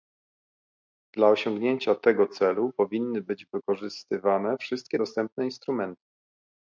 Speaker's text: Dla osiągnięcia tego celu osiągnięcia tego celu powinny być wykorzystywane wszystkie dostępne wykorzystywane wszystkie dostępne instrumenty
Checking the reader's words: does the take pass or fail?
fail